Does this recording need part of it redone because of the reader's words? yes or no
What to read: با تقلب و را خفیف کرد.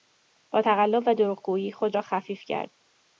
yes